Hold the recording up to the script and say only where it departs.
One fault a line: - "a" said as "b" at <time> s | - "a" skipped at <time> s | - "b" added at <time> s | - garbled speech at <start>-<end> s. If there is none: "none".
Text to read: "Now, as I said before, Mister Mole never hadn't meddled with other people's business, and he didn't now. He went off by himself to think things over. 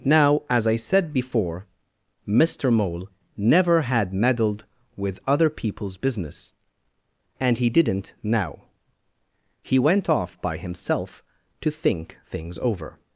- "hadn't" said as "had" at 3.8 s